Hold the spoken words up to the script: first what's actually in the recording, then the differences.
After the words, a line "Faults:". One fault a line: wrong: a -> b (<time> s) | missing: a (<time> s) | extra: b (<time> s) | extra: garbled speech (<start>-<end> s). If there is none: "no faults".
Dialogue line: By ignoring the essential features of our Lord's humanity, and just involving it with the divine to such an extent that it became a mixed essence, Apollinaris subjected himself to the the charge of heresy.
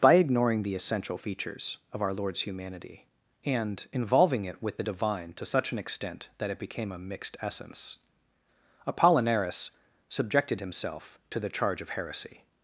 By ignoring the essential features of our Lord's humanity, and involving it with the divine to such an extent that it became a mixed essence, Apollinaris subjected himself to the charge of heresy.
Faults:
missing: just (3.8 s)
missing: the (11.5 s)